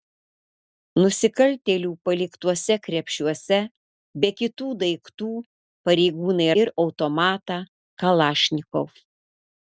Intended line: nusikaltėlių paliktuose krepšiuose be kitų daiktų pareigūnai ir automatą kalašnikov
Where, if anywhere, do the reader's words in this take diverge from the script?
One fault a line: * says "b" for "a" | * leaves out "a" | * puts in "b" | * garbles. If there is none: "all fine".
all fine